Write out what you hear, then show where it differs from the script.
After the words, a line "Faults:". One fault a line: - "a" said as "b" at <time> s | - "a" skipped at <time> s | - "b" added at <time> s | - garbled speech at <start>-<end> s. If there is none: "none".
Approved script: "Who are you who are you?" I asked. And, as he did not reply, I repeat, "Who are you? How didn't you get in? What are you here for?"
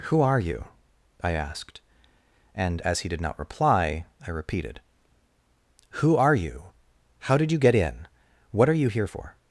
"Who are you?" I asked. And, as he did not reply, I repeated, "Who are you? How did you get in? What are you here for?"
Faults:
- "who are you" skipped at 0.7 s
- "repeat" said as "repeated" at 4.3 s
- "didn't" said as "did" at 7.4 s